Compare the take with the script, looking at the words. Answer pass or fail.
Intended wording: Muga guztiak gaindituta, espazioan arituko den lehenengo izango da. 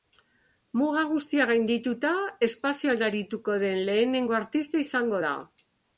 fail